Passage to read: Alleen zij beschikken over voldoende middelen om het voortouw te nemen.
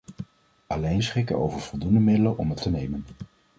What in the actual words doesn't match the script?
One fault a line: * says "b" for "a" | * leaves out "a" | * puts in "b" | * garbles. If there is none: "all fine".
* leaves out "zij"
* leaves out "voortouw"